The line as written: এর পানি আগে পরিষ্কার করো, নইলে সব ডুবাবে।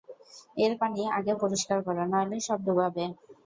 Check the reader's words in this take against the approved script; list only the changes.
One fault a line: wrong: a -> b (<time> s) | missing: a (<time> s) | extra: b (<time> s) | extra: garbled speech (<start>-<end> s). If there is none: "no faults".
no faults